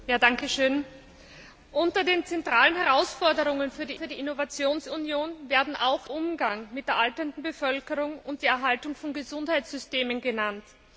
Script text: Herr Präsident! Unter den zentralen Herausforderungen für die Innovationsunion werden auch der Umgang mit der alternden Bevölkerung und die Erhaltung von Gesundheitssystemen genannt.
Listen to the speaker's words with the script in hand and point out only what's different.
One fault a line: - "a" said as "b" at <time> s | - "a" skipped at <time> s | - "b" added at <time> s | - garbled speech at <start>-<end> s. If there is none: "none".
- "für die" added at 3.9 s
- "der" skipped at 6.1 s